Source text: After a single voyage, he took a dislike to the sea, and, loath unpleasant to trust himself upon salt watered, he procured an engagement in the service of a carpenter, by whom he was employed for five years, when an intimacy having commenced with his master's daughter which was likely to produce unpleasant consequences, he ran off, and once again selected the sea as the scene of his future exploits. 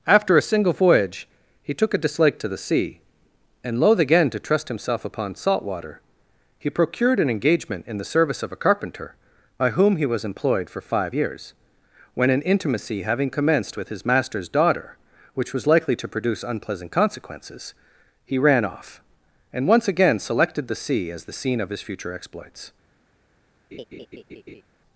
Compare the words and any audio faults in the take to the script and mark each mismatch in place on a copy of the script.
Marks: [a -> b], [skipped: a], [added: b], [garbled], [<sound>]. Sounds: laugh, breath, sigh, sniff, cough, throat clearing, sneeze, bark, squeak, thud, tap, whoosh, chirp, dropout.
After a single voyage, he took a dislike to the sea, and, loath [unpleasant -> again] to trust himself upon salt [watered, -> water] he procured an engagement in the service of a carpenter, by whom he was employed for five years, when an intimacy having commenced with his master's daughter which was likely to produce unpleasant consequences, he ran off, and once again selected the sea as the scene of his future exploits. [laugh]